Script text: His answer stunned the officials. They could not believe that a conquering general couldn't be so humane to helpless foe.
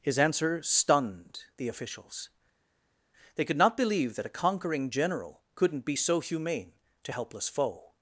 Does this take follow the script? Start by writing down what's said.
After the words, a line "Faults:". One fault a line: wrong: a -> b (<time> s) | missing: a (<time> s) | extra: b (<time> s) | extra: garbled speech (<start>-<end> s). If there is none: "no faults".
His answer stunned the officials. They could not believe that a conquering general couldn't be so humane to helpless foe.
Faults:
no faults